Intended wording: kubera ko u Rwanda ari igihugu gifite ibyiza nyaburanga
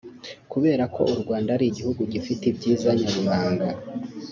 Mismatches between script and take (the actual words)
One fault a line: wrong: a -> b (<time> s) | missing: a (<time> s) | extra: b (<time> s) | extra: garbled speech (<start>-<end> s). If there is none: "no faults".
no faults